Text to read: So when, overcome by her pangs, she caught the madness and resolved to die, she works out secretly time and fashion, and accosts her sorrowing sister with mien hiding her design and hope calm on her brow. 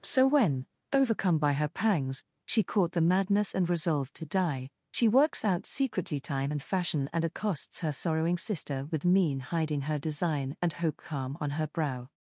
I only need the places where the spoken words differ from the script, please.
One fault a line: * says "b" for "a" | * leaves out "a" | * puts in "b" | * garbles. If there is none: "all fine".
all fine